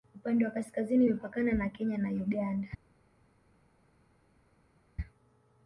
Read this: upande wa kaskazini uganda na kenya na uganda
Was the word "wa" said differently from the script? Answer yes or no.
no